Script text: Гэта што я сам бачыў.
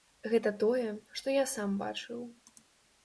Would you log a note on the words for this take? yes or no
yes